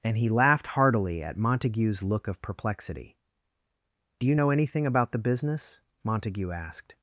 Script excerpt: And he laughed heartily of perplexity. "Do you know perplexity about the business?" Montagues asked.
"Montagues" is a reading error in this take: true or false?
true